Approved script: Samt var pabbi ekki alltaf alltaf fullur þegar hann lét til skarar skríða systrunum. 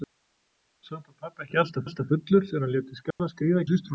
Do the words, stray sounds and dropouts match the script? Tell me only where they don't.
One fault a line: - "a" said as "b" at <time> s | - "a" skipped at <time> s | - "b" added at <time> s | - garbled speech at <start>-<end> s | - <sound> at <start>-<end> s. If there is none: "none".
- dropout at 3.1-3.2 s